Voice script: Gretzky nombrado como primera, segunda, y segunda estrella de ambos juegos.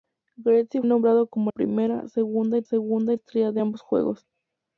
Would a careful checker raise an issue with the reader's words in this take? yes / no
no